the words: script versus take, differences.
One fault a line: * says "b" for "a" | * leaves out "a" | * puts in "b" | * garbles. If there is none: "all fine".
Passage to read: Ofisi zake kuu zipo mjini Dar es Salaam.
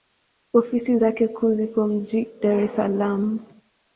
all fine